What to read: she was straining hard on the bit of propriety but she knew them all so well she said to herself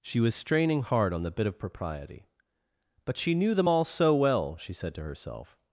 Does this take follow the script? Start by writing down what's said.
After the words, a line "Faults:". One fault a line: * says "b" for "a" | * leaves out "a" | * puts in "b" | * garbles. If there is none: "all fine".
she was straining hard on the bit of propriety but she knew them all so well she said to herself
Faults:
all fine